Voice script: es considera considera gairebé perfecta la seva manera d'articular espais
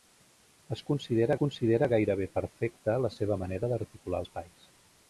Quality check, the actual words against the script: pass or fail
pass